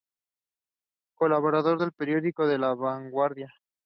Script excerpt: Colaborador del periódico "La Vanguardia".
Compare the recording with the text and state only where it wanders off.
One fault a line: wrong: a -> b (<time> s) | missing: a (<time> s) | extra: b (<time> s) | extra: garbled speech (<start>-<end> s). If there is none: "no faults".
no faults